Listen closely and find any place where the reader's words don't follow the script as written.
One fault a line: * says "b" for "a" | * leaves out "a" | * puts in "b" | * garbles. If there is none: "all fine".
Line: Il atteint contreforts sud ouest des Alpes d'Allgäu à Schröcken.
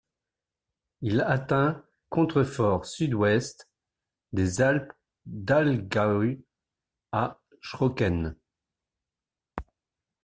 all fine